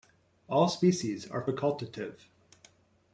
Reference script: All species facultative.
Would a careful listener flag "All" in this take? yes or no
no